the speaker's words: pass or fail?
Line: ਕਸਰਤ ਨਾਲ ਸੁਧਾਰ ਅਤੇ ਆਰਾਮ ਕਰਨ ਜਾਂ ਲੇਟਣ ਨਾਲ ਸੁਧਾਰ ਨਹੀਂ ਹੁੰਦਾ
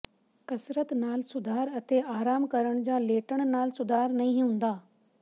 pass